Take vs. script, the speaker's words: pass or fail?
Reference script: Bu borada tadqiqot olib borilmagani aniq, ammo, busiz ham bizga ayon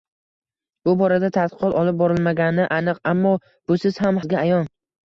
pass